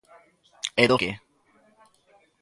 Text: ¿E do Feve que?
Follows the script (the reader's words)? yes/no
no